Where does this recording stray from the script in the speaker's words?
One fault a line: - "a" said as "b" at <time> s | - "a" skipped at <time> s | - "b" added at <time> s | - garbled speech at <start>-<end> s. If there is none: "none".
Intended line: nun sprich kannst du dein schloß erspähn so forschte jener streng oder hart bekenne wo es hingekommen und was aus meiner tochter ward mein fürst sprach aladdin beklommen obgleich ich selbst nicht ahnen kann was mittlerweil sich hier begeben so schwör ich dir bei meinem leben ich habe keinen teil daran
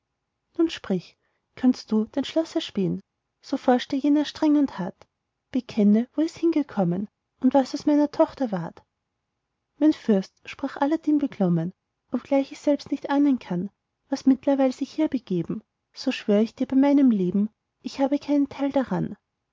- "oder" said as "und" at 4.6 s